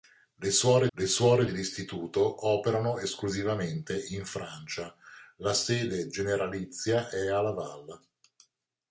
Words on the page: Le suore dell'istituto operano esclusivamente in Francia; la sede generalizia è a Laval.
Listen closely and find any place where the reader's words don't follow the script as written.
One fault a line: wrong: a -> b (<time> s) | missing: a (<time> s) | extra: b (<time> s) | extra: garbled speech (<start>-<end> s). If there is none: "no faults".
extra: le suore (0.9 s)